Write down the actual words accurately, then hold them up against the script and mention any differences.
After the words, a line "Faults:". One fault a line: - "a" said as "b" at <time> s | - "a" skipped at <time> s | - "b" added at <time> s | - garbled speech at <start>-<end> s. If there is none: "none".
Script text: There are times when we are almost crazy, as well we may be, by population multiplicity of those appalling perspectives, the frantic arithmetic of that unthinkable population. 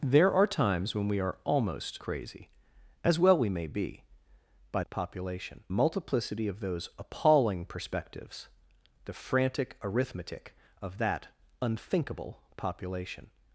There are times when we are almost crazy, as well we may be, by population multiplicity of those appalling perspectives, the frantic arithmetic of that unthinkable population.
Faults:
none